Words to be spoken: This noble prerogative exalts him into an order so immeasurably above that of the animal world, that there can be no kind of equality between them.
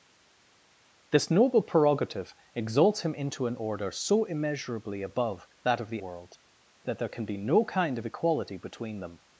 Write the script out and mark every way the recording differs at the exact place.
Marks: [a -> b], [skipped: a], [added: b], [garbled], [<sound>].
This noble prerogative exalts him into an order so immeasurably above that of the [skipped: animal] world, that there can be no kind of equality between them.